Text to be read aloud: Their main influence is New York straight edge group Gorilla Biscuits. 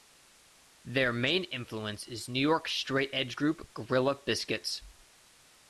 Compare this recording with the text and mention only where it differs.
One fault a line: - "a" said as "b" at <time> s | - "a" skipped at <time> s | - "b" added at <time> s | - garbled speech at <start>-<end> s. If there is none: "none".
none